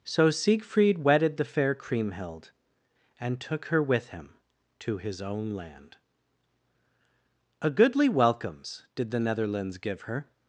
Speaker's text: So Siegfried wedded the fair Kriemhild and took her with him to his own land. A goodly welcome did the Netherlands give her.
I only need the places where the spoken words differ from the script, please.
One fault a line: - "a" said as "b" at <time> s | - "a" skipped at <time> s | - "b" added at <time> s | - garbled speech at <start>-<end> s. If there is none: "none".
- "welcome" said as "welcomes" at 8.1 s